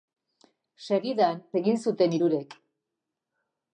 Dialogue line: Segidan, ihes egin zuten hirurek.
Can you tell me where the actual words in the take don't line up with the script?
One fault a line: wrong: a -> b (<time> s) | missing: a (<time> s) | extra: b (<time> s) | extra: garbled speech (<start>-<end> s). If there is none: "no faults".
missing: ihes (1.4 s)